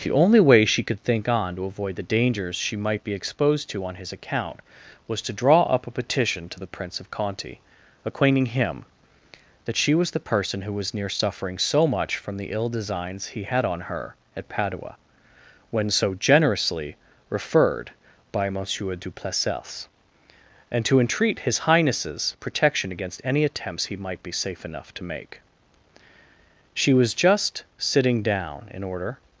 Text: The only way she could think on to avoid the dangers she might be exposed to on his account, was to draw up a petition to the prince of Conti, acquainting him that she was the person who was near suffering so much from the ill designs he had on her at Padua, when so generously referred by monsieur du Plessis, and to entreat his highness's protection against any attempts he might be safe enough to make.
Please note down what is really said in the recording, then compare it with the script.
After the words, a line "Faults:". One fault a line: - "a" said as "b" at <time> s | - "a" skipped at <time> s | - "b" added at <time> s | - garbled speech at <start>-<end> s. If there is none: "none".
The only way she could think on to avoid the dangers she might be exposed to on his account, was to draw up a petition to the prince of Conti, acquainting him that she was the person who was near suffering so much from the ill designs he had on her at Padua, when so generously referred by monsieur du Plessis, and to entreat his highness's protection against any attempts he might be safe enough to make. She was just sitting down, in order
Faults:
- "She was just sitting down in order" added at 26.7 s